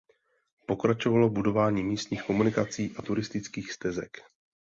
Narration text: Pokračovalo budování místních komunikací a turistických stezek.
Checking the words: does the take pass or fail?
pass